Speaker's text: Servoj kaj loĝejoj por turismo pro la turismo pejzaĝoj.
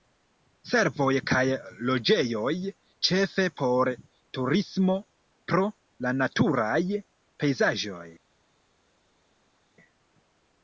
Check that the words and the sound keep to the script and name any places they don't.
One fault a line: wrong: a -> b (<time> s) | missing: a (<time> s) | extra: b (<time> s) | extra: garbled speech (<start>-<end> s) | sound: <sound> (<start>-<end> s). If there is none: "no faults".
extra: ĉefe (3.1 s)
wrong: turismo -> naturaj (6.2 s)